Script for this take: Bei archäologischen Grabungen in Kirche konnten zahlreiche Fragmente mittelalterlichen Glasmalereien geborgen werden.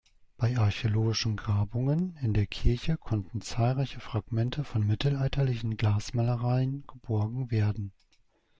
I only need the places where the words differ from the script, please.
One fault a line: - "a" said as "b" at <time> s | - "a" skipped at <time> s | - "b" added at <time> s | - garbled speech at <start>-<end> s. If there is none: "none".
- "der" added at 2.3 s
- "von" added at 4.6 s